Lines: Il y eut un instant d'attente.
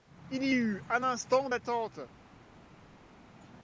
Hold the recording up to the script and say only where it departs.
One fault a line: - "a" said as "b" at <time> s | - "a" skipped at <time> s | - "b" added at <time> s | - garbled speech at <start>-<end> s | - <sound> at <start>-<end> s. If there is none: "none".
none